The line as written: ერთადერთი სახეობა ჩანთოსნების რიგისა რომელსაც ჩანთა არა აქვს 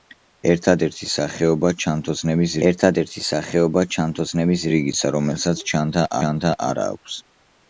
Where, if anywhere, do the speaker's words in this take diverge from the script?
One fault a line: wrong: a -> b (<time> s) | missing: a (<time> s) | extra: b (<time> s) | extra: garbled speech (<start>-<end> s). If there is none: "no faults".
extra: ერთადერთი სახეობა ჩანთოსნების (2.7 s)
extra: ჩანთა (6.2 s)